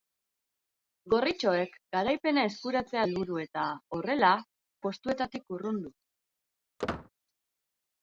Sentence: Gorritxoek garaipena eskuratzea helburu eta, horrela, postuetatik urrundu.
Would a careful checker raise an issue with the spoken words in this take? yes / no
no